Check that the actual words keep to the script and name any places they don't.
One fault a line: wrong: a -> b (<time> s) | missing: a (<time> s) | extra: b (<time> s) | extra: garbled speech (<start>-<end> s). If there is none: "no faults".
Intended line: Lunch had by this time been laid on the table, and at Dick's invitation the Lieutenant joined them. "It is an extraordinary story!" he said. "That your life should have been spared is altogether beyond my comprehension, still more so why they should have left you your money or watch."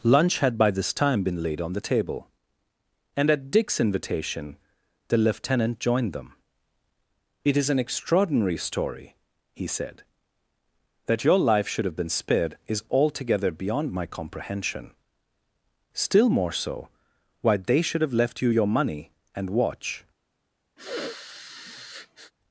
wrong: or -> and (19.4 s)